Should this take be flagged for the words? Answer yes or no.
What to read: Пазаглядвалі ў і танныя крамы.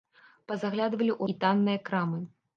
no